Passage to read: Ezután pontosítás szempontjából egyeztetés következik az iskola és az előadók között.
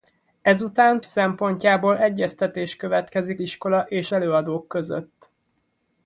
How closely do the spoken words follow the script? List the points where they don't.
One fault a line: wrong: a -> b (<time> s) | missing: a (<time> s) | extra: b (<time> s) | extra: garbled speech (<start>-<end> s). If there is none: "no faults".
missing: pontosítás (1.0 s)
missing: az (3.4 s)
missing: az (4.1 s)